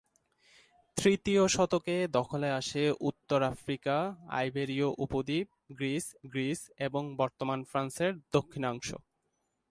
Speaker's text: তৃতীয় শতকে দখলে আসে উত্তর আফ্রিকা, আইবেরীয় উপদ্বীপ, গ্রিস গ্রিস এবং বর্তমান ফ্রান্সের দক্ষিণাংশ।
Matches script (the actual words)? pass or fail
pass